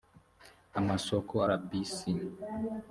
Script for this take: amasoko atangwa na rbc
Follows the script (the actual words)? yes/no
no